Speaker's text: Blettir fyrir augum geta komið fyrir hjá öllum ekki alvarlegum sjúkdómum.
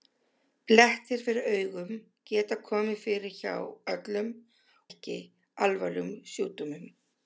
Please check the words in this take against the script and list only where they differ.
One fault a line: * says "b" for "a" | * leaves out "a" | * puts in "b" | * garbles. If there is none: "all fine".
all fine